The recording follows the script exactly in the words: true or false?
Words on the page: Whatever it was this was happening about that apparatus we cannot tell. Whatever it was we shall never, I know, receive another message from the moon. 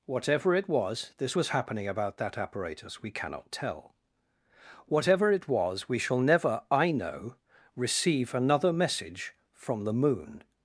true